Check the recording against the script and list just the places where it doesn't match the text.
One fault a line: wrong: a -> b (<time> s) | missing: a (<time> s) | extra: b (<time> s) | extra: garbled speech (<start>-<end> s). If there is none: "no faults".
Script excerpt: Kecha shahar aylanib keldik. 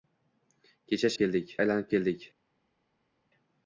wrong: shahar -> keldik (1.2 s)